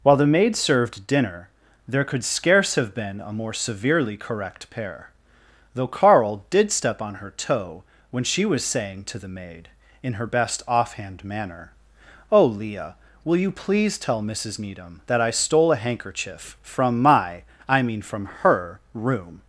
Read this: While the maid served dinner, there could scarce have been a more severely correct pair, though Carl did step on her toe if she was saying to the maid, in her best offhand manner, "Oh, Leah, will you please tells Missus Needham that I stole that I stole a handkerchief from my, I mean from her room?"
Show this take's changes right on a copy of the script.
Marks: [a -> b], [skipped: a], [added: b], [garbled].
While the maid served dinner, there could scarce have been a more severely correct pair, though Carl did step on her toe [if -> when] she was saying to the maid, in her best offhand manner, "Oh, Leah, will you please [tells -> tell] Missus Needham that I stole [skipped: that I stole] a handkerchief from my, I mean from her room?"